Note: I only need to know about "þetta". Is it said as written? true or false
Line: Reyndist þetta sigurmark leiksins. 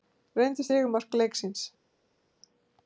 false